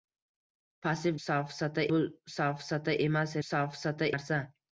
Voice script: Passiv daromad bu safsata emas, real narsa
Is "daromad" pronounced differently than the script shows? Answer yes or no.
yes